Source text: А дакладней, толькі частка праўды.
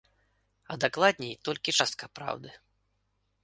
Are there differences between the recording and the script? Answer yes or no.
no